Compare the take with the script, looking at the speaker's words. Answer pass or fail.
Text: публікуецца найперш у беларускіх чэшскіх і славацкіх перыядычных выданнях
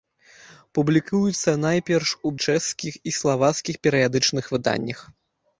fail